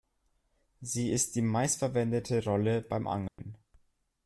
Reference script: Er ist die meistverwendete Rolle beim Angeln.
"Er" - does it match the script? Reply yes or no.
no